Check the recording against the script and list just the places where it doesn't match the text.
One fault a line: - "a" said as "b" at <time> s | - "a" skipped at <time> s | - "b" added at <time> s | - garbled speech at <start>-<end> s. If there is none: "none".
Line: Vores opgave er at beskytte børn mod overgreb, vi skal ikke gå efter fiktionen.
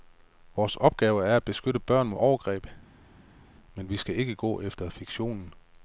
- "men" added at 3.7 s